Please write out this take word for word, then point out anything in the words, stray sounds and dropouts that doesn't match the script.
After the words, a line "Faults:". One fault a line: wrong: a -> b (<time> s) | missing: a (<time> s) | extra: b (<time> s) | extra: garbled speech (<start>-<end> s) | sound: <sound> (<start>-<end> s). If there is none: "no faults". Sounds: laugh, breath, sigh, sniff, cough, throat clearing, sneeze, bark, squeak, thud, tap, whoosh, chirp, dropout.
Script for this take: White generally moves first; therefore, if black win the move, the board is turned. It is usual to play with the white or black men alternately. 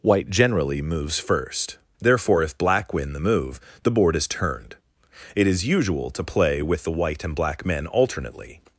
White generally moves first; therefore, if black win the move, the board is turned. It is usual to play with the white and black men alternately.
Faults:
wrong: or -> and (7.3 s)